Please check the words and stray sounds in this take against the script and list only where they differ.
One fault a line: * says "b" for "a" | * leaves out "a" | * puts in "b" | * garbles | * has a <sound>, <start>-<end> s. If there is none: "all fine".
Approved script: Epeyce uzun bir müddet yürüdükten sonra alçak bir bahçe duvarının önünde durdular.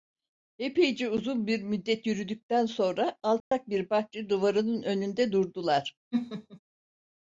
* has a dropout, 3.4-3.5 s
* has a laugh, 6.1-6.6 s